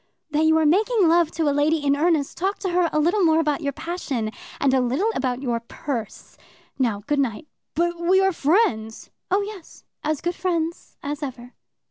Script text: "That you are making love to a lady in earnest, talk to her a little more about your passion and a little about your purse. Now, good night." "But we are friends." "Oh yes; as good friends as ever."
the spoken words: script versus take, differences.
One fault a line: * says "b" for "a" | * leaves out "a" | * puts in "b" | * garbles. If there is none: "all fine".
all fine